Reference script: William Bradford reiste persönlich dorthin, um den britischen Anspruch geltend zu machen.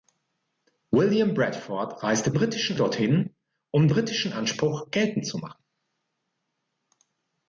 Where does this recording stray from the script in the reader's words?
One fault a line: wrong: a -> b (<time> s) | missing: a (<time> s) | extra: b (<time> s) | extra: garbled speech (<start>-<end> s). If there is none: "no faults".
wrong: persönlich -> britischen (2.3 s)
missing: den (3.9 s)